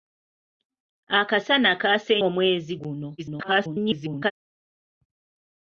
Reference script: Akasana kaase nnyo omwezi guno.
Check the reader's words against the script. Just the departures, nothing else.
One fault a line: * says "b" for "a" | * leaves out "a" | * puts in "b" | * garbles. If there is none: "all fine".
* leaves out "nnyo"
* garbles